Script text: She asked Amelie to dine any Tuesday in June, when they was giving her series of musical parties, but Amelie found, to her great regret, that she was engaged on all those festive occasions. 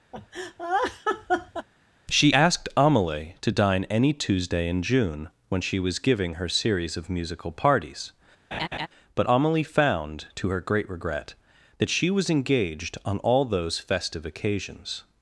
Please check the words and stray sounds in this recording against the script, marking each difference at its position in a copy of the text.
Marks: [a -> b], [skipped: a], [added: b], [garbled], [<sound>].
[laugh] She asked Amelie to dine any Tuesday in June, when [they -> she] was giving her series of musical parties, [laugh] but Amelie found, to her great regret, that she was engaged on all those festive occasions.